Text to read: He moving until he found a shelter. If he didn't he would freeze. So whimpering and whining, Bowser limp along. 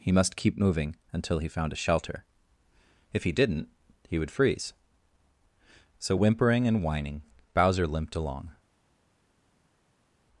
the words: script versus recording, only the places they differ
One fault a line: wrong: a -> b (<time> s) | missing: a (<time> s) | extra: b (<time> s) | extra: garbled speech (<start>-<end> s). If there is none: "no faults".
extra: must keep (0.1 s)
wrong: limp -> limped (7.9 s)